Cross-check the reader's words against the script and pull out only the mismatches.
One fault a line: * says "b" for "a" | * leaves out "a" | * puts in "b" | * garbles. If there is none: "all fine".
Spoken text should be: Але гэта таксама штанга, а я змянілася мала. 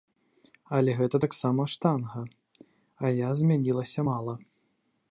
all fine